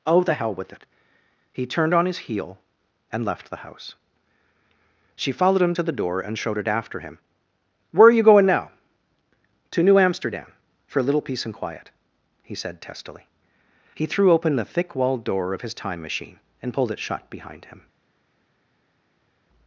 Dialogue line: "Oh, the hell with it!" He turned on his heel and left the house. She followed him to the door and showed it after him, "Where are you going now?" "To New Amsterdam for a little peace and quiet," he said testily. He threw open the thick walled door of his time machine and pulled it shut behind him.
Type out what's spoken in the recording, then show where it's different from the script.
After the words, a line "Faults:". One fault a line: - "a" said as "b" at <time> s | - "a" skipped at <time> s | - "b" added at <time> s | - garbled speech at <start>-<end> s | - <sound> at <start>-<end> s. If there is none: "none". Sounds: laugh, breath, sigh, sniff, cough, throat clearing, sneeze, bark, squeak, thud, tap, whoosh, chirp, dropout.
"Oh, the hell with it!" He turned on his heel and left the house. She followed him to the door and showed it after him, "Where are you going now?" "To New Amsterdam for a little peace and quiet," he said testily. He threw open the thick walled door of his time machine and pulled it shut behind him.
Faults:
none